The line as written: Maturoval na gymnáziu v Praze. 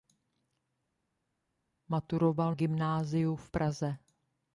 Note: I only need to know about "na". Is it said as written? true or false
false